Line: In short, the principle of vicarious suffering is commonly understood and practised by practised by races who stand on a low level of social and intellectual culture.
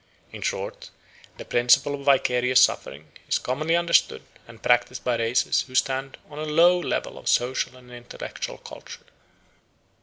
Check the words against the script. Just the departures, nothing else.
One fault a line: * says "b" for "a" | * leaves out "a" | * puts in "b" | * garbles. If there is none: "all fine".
* leaves out "practised by"